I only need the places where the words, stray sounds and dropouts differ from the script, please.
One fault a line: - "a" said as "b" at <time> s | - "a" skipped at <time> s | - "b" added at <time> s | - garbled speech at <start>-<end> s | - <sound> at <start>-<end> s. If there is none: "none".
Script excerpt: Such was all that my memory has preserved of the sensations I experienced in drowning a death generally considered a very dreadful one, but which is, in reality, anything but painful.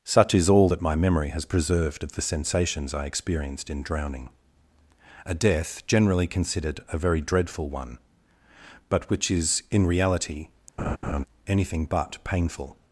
- "was" said as "is" at 0.3 s
- laugh at 10.8-11.2 s